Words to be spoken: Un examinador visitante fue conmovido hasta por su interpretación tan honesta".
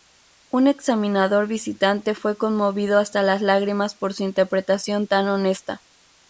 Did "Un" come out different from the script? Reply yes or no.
no